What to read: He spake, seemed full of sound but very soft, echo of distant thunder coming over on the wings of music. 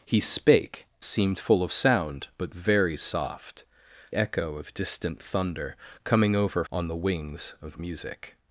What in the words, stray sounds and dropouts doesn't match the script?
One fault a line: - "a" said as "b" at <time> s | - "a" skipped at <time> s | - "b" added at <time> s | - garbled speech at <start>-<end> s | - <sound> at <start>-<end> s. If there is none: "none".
none